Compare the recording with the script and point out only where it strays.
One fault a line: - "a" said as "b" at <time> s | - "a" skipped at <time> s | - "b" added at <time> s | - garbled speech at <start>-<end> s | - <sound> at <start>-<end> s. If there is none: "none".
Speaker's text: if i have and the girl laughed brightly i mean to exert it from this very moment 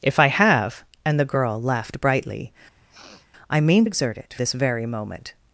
- sniff at 2.8-3.3 s
- "to" skipped at 3.9 s
- "from" skipped at 4.3 s